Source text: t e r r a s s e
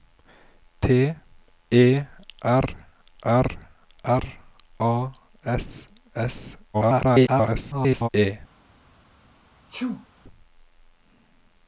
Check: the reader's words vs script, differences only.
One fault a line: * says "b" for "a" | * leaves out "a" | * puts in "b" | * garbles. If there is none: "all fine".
* puts in "r"
* garbles